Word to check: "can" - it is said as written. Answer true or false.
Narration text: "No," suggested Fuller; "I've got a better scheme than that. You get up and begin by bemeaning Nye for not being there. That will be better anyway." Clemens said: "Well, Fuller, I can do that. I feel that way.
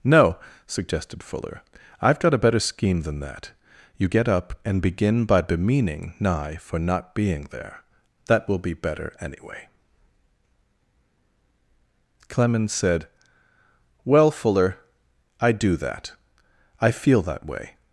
false